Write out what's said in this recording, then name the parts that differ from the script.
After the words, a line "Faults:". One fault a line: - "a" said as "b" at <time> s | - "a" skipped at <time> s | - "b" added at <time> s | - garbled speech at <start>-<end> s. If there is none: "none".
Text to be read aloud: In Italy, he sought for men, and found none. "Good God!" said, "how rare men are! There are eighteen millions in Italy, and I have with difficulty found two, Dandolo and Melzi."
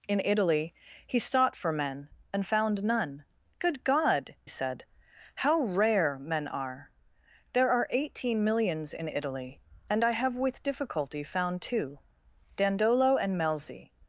In Italy, he sought for men, and found none. "Good God!" said, "how rare men are! There are eighteen millions in Italy, and I have with difficulty found two, Dandolo and Melzi."
Faults:
none